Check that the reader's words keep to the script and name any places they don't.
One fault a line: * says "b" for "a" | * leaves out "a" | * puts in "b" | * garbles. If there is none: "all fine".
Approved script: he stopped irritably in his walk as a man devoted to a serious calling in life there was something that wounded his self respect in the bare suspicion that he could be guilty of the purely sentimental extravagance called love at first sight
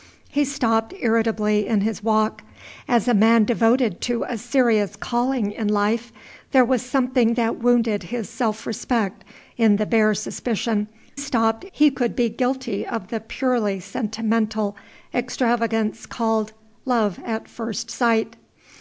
* says "stopped" for "that"